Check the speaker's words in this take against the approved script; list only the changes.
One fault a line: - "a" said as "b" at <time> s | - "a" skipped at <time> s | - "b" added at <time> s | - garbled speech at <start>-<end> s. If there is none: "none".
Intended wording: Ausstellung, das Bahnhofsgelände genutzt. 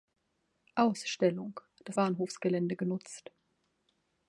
none